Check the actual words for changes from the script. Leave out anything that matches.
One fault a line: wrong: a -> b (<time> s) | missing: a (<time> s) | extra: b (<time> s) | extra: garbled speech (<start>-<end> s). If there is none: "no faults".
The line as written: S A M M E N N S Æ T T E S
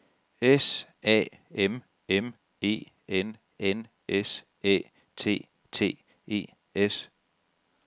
no faults